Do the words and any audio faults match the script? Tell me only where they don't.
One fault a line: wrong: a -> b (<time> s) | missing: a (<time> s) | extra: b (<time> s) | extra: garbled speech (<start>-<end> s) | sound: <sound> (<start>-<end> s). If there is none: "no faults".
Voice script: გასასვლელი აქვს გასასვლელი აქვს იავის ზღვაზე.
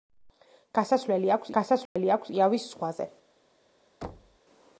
sound: dropout (1.9-2.0 s)
sound: thud (4.0-4.4 s)